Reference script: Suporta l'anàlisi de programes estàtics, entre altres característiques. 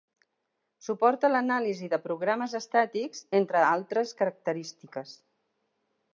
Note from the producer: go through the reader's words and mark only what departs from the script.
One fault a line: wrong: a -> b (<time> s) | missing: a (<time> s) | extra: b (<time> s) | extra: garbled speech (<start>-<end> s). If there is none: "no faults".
no faults